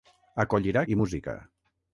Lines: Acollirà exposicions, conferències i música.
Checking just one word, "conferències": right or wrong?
wrong